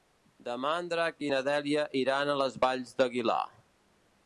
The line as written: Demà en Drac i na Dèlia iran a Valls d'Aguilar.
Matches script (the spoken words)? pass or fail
fail